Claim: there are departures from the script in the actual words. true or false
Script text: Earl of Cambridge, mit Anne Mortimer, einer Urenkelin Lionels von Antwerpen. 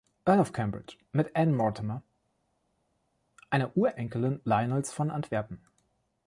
false